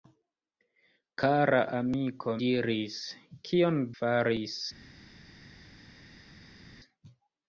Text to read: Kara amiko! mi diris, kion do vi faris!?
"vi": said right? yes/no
no